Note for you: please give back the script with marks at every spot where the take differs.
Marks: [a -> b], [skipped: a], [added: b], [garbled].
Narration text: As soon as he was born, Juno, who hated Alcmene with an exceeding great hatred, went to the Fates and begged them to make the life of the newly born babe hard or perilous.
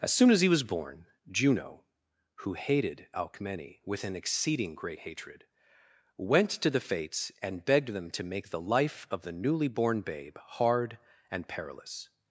As soon as he was born, Juno, who hated Alcmene with an exceeding great hatred, went to the Fates and begged them to make the life of the newly born babe hard [or -> and] perilous.